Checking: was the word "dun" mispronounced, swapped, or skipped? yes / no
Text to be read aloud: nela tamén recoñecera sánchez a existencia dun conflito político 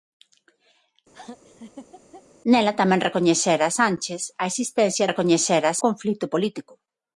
yes